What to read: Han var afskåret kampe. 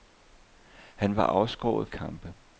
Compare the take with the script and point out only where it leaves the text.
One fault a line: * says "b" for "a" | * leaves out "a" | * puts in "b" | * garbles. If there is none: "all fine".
all fine